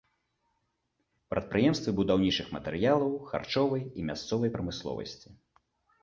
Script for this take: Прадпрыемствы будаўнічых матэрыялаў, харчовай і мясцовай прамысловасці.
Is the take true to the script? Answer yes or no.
yes